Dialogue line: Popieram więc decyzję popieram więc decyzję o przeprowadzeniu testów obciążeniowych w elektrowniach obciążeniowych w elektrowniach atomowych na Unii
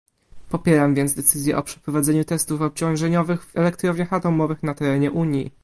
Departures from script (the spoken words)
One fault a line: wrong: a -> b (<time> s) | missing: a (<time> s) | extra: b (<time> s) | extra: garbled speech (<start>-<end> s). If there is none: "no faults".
missing: popieram więc decyzję (1.6 s)
missing: obciążeniowych w elektrowniach (4.1 s)
extra: terenie (4.7 s)